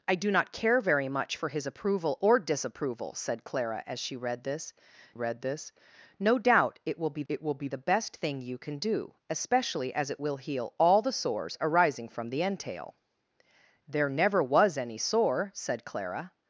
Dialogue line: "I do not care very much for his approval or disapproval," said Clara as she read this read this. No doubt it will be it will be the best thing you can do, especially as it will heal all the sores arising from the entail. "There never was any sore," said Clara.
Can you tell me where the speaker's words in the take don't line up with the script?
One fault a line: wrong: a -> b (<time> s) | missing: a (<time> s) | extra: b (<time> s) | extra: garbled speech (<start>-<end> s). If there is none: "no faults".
no faults